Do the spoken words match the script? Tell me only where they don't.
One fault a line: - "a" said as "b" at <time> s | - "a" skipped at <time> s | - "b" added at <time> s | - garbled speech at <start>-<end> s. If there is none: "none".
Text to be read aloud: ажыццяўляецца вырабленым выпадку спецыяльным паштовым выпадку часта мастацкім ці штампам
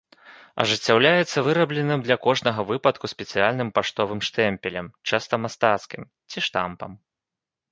- "для кожнага" added at 2.1 s
- "выпадку" said as "штэмпелем" at 4.3 s